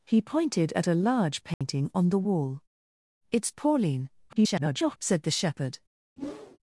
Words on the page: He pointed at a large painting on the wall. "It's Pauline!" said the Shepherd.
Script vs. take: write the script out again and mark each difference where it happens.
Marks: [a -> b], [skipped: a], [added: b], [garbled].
He pointed at a large painting on the wall. "It's Pauline!" [garbled] said the Shepherd.